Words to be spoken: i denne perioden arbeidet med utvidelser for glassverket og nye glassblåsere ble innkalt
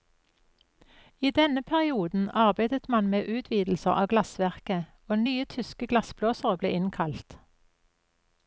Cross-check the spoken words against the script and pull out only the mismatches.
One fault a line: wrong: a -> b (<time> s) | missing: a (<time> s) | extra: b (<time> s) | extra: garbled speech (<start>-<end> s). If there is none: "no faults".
extra: man (2.9 s)
wrong: for -> av (3.9 s)
extra: tyske (5.6 s)